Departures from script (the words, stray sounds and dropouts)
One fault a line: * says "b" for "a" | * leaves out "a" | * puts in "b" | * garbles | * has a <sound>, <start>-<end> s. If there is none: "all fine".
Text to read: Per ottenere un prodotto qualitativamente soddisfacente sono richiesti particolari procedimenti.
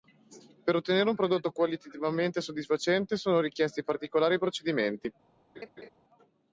* has a laugh, 5.5-5.9 s